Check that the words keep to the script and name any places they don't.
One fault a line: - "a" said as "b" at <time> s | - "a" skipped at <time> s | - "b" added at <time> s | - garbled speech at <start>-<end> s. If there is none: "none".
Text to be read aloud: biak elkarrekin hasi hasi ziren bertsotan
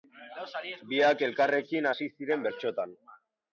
- "hasi" skipped at 2.1 s